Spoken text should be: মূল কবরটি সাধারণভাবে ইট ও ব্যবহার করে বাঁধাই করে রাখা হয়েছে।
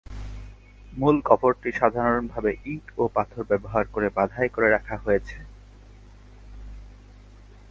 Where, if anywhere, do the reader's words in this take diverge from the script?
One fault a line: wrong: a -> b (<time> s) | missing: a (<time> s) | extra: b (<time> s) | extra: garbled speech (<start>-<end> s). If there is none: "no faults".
extra: পাথর (3.1 s)